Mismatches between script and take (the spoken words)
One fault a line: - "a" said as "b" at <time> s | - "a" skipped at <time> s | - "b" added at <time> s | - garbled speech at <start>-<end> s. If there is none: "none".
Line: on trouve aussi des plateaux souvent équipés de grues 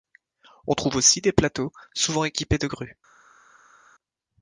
none